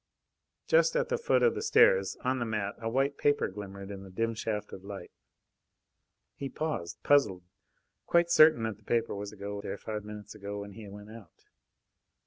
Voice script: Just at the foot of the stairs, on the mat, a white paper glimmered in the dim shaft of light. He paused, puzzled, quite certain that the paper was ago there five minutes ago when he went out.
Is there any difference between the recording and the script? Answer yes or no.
no